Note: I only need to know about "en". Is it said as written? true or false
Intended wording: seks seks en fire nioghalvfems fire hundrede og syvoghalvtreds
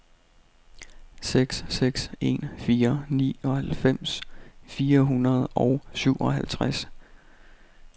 true